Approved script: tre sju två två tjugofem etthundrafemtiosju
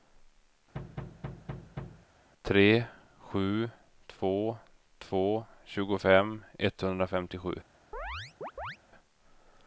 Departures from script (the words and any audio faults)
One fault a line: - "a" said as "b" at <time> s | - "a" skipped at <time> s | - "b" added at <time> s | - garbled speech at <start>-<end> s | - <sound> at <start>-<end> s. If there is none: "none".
- thud at 0.7-2.1 s
- chirp at 7.9-8.8 s